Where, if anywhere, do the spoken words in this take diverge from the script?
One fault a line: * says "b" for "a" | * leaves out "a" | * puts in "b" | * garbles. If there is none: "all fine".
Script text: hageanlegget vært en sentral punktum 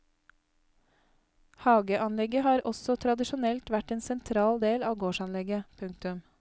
* puts in "har også tradisjonelt"
* puts in "del av gårdsanlegget"